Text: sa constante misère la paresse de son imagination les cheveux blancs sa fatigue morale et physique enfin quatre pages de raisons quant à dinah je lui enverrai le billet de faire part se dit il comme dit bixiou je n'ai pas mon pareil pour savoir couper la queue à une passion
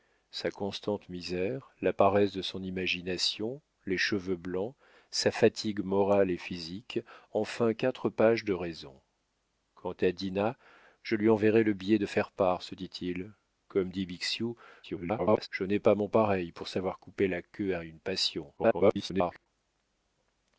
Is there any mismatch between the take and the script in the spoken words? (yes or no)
yes